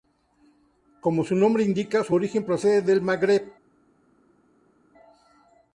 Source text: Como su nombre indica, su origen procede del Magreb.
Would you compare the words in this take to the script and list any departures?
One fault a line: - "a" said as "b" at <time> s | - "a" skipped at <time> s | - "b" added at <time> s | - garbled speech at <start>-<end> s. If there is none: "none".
none